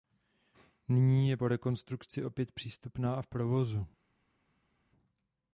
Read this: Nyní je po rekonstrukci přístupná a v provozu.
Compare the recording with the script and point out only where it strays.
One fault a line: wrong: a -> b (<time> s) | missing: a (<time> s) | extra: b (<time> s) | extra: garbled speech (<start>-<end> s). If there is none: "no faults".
extra: opět (2.2 s)